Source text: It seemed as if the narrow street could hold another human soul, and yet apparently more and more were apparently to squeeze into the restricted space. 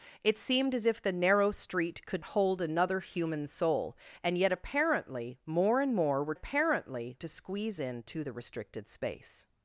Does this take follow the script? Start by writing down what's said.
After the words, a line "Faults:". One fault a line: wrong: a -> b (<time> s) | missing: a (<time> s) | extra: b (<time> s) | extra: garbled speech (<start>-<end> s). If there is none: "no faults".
It seemed as if the narrow street could hold another human soul, and yet apparently more and more were apparently to squeeze into the restricted space.
Faults:
no faults